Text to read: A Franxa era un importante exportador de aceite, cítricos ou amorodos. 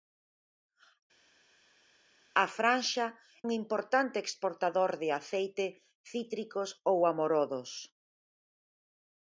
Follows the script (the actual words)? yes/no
no